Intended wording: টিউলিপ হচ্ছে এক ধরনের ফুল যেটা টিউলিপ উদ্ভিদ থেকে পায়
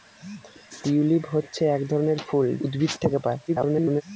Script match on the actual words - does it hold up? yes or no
no